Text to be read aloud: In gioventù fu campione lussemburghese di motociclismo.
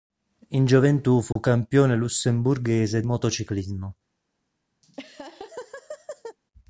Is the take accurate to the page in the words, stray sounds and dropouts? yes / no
no